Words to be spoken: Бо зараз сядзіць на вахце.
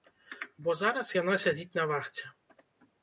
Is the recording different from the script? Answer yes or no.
yes